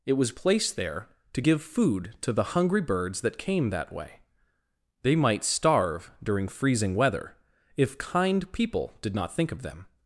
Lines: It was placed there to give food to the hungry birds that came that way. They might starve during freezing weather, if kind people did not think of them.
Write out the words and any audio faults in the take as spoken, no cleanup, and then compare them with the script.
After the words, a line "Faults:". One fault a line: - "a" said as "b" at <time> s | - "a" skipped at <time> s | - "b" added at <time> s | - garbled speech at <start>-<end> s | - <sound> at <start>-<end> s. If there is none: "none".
It was placed there to give food to the hungry birds that came that way. They might starve during freezing weather, if kind people did not think of them.
Faults:
none